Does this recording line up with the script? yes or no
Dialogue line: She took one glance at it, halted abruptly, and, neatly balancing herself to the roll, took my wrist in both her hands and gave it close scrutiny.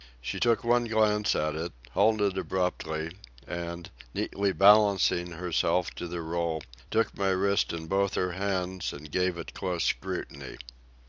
yes